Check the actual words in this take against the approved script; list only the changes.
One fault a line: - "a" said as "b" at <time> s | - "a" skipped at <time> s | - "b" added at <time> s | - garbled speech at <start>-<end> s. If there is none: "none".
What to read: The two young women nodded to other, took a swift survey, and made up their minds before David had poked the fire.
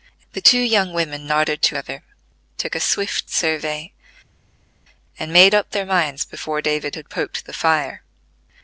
none